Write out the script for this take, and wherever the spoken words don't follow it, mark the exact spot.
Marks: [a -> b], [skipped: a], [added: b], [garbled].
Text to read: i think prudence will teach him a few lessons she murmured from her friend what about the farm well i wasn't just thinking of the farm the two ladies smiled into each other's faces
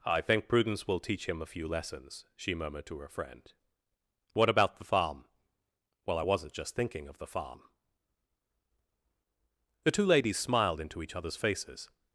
i think prudence will teach him a few lessons she murmured [from -> to] her friend what about the farm well i wasn't just thinking of the farm the two ladies smiled into each other's faces